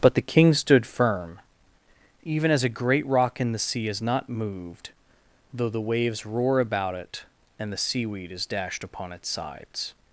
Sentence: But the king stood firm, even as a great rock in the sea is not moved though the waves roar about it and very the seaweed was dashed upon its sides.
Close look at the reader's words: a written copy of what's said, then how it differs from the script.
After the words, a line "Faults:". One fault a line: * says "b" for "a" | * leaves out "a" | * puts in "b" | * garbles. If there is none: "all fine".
But the king stood firm, even as a great rock in the sea is not moved though the waves roar about it and the seaweed is dashed upon its sides.
Faults:
* leaves out "very"
* says "is" for "was"